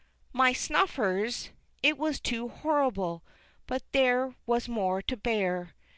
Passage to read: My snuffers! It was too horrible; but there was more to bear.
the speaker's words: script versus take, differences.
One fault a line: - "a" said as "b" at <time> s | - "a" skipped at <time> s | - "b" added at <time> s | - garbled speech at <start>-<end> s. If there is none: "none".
none